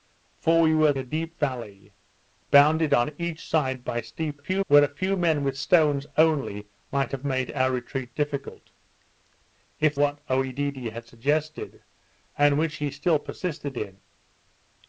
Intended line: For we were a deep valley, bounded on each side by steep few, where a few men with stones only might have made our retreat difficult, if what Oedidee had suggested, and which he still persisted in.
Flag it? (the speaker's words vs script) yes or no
no